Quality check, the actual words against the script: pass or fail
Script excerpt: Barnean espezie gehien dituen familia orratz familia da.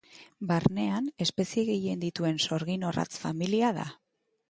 fail